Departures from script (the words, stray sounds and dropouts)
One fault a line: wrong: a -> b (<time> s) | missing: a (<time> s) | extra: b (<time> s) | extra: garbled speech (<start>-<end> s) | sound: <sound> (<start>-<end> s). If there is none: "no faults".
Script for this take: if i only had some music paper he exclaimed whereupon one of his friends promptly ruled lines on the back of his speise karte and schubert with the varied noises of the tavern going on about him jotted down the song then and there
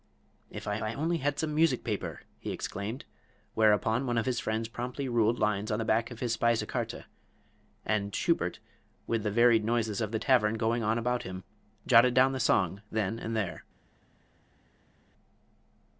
extra: i (0.8 s)